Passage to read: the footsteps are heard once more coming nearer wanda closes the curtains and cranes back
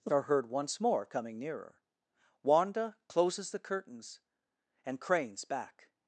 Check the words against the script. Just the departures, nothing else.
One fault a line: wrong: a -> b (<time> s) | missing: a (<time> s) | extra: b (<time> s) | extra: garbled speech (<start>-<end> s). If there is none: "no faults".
missing: footsteps (0.1 s)